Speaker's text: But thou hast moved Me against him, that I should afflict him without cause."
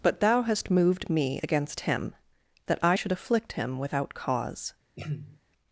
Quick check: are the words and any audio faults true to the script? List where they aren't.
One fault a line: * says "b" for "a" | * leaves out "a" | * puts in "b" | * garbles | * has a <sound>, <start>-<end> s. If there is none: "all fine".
* has a throat clearing, 5.0-5.4 s